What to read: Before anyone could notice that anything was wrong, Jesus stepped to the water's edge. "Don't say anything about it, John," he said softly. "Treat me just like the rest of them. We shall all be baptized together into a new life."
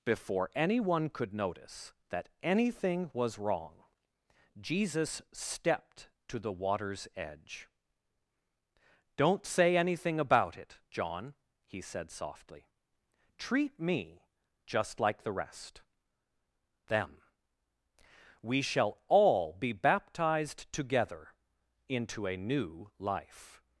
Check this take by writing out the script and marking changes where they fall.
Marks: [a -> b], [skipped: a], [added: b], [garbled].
Before anyone could notice that anything was wrong, Jesus stepped to the water's edge. "Don't say anything about it, John," he said softly. "Treat me just like the rest [skipped: of] them. We shall all be baptized together into a new life."